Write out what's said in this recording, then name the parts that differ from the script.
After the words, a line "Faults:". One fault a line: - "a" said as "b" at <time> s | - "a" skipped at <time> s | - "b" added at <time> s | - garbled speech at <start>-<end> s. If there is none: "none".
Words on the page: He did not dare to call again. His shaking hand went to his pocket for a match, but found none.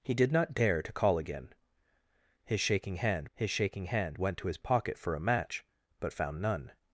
He did not dare to call again. His shaking hand his shaking hand went to his pocket for a match, but found none.
Faults:
- "his shaking hand" added at 3.3 s